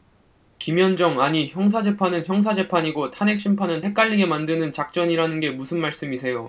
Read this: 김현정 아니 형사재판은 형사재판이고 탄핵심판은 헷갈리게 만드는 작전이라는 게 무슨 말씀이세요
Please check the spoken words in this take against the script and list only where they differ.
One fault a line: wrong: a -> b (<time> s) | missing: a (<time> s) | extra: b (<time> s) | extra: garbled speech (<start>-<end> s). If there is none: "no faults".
no faults